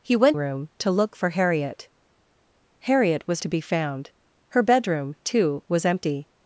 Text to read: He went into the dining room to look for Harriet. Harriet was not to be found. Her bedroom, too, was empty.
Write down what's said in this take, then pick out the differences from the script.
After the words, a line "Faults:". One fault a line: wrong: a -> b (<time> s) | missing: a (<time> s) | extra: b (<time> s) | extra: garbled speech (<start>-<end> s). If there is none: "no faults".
He went room to look for Harriet. Harriet was to be found. Her bedroom, too, was empty.
Faults:
missing: into the dining (0.4 s)
missing: not (3.4 s)